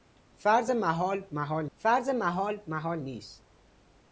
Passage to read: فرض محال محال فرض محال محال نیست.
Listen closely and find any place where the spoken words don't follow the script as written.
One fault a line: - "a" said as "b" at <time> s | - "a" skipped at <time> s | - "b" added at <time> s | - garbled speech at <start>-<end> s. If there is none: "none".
none